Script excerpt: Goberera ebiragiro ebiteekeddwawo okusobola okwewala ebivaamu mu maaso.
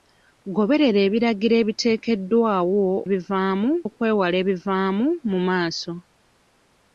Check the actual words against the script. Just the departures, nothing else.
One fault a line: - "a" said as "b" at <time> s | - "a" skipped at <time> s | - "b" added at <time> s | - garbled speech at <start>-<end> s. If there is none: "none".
- "okusobola" said as "ebivaamu" at 3.1 s